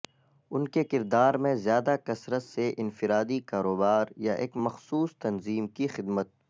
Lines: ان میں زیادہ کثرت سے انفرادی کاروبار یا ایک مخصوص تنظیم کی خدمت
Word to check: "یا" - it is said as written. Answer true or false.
true